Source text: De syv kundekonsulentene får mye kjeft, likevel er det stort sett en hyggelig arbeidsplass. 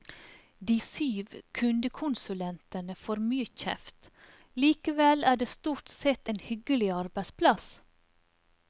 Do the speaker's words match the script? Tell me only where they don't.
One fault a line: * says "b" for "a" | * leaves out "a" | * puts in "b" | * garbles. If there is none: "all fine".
all fine